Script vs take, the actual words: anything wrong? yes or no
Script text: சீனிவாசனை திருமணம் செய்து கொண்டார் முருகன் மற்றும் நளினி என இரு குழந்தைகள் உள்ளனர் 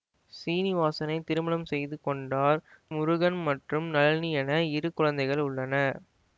no